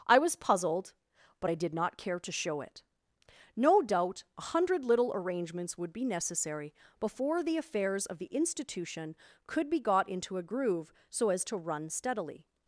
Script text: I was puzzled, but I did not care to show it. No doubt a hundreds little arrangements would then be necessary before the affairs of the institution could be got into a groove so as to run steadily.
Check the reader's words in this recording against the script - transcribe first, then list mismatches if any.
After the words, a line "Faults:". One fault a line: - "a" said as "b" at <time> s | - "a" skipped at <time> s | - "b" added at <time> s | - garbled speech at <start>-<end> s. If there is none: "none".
I was puzzled, but I did not care to show it. No doubt a hundred little arrangements would be necessary before the affairs of the institution could be got into a groove so as to run steadily.
Faults:
- "hundreds" said as "hundred" at 4.4 s
- "then" skipped at 5.9 s